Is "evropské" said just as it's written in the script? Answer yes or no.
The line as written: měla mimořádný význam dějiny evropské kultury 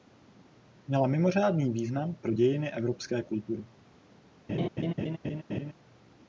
yes